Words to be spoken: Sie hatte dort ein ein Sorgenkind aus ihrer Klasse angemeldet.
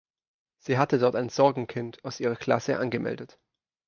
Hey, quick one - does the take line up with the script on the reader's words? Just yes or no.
no